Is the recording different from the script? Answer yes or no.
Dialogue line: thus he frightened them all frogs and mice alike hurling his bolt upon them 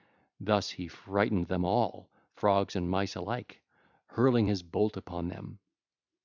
no